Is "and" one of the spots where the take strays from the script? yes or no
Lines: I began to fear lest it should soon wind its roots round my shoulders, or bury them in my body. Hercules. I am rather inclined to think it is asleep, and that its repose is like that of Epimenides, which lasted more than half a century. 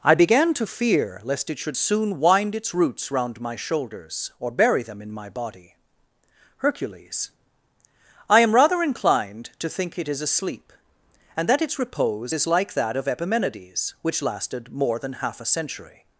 no